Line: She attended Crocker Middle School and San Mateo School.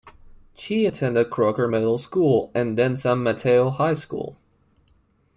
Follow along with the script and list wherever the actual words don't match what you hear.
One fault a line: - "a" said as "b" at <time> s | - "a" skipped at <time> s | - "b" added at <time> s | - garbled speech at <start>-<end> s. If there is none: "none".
- "then" added at 2.8 s
- "High" added at 3.7 s